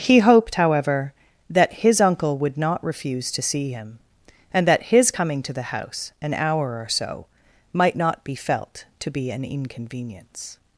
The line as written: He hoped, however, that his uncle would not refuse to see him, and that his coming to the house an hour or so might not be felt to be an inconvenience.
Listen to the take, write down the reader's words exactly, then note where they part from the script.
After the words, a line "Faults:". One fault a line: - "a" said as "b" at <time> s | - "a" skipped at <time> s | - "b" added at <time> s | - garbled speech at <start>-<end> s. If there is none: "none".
He hoped, however, that his uncle would not refuse to see him, and that his coming to the house an hour or so might not be felt to be an inconvenience.
Faults:
none